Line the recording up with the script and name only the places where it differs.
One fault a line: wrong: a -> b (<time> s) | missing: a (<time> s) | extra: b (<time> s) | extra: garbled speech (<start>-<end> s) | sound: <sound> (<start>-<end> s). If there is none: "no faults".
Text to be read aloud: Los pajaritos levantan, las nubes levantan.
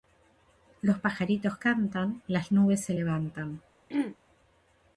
wrong: levantan -> cantan (1.6 s)
extra: se (2.8 s)
sound: throat clearing (3.9-4.2 s)